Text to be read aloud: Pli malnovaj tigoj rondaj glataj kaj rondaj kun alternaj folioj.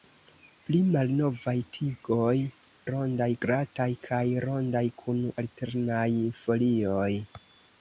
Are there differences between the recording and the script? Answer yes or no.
no